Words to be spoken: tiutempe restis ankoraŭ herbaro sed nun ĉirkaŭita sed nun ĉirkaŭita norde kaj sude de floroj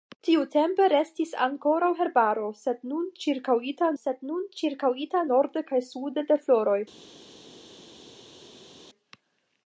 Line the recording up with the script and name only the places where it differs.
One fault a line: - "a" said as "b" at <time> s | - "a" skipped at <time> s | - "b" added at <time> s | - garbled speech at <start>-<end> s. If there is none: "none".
none